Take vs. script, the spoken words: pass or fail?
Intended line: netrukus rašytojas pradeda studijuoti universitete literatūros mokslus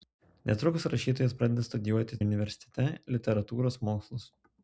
pass